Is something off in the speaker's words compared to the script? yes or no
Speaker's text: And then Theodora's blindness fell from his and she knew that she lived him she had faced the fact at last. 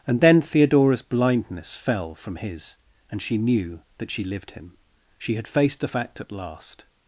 no